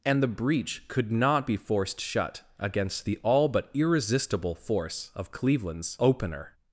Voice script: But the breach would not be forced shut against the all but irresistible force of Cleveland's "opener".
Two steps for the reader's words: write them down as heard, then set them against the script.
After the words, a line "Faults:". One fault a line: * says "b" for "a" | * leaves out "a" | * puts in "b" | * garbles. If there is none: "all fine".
And the breach could not be forced shut against the all but irresistible force of Cleveland's "opener".
Faults:
* says "And" for "But"
* says "could" for "would"